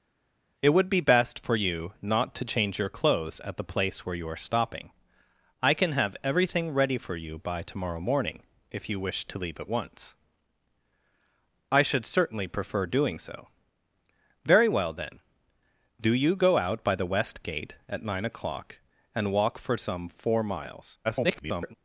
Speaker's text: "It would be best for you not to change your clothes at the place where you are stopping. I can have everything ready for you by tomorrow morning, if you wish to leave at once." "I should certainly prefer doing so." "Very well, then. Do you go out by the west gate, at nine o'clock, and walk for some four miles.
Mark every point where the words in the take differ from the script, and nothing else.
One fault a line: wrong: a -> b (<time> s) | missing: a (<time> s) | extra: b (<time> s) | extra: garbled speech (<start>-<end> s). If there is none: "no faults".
extra: garbled speech (21.0-21.7 s)